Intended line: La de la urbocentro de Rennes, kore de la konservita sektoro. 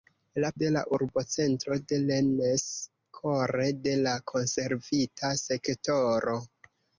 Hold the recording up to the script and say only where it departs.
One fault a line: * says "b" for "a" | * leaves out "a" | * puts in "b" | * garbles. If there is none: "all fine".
all fine